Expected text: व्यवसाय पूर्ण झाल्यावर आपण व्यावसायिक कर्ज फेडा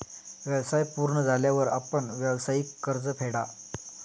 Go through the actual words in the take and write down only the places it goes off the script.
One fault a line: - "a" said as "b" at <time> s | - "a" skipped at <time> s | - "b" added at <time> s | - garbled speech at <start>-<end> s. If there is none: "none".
none